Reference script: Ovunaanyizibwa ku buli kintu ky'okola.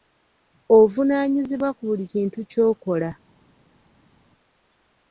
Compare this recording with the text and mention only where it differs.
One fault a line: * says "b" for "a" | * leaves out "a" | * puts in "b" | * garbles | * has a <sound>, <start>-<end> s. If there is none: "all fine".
all fine